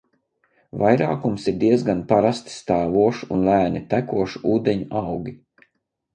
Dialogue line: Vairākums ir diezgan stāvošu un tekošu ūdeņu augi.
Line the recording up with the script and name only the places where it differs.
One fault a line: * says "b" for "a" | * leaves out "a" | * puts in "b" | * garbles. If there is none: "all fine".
* puts in "parasti"
* puts in "lēni"